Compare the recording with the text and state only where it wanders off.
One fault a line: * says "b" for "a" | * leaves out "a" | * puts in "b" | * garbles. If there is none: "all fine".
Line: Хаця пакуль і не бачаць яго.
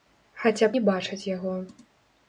* leaves out "пакуль і"